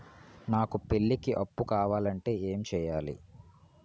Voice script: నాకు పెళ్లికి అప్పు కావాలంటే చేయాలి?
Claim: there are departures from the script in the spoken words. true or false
true